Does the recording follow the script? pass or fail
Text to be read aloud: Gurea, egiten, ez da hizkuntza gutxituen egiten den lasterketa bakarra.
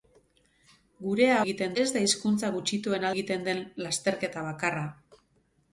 pass